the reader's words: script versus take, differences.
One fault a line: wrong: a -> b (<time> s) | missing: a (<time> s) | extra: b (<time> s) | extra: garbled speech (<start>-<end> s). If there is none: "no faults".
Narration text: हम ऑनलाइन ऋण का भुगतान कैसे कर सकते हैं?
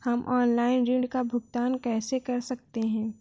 no faults